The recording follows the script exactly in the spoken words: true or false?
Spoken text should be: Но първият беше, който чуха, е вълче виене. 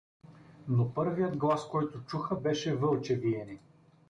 false